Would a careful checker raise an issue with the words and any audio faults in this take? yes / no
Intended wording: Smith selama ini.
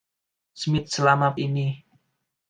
no